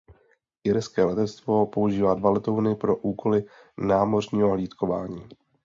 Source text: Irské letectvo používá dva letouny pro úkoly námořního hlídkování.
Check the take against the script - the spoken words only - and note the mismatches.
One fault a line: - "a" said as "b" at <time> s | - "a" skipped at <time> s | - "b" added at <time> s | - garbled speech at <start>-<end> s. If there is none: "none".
none